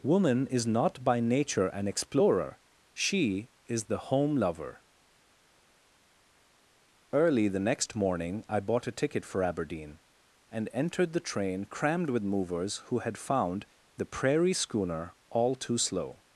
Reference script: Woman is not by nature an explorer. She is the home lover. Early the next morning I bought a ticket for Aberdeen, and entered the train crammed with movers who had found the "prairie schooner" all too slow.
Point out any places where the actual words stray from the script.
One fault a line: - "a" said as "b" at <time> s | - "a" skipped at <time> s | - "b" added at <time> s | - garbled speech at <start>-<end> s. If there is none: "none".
none